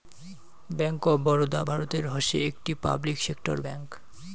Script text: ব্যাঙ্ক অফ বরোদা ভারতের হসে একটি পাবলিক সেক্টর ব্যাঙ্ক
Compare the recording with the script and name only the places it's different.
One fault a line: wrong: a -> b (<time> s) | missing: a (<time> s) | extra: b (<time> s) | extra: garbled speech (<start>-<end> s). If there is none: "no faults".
no faults